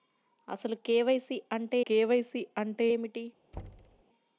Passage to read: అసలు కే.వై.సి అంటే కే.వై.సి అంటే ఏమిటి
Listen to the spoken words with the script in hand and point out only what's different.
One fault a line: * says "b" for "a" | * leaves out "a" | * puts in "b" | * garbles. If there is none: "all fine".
all fine